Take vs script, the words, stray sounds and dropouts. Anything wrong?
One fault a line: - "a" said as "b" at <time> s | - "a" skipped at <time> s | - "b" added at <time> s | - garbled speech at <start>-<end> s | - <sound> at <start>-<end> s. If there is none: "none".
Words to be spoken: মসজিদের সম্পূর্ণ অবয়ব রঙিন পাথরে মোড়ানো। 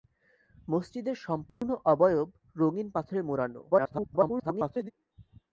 - dropout at 1.5-1.6 s
- garbled speech at 3.7-4.9 s